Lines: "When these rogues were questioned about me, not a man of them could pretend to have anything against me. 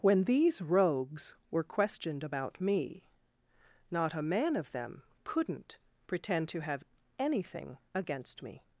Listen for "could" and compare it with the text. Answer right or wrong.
wrong